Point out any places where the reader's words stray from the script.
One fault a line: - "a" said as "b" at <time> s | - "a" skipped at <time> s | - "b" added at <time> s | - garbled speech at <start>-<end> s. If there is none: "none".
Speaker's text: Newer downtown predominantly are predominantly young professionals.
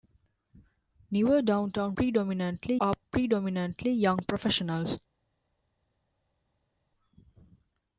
none